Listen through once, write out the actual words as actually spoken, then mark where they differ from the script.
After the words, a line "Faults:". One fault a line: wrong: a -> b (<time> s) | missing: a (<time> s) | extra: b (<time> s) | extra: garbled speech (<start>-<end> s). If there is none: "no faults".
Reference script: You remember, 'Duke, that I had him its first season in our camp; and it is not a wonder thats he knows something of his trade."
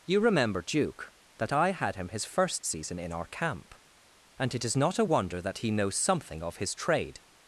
You remember, 'Duke, that I had him his first season in our camp; and it is not a wonder that he knows something of his trade."
Faults:
wrong: its -> his (2.1 s)
wrong: thats -> that (5.4 s)